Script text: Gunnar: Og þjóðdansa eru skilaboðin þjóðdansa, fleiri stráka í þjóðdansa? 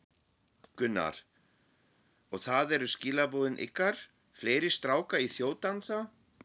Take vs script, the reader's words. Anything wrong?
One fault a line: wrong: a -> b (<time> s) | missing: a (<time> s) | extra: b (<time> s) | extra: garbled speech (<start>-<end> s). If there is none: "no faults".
wrong: þjóðdansa -> það (2.4 s)
wrong: þjóðdansa -> ykkar (3.7 s)